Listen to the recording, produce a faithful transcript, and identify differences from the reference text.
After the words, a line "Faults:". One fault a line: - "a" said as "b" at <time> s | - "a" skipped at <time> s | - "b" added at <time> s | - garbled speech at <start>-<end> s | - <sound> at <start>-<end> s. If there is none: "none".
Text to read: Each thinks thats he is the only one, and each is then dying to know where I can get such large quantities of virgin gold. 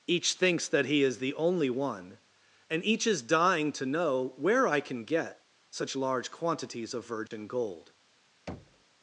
Each thinks that he is the only one, and each is dying to know where I can get such large quantities of virgin gold.
Faults:
- "thats" said as "that" at 0.7 s
- "then" skipped at 3.2 s
- dropout at 7.3-7.3 s
- thud at 8.5-8.8 s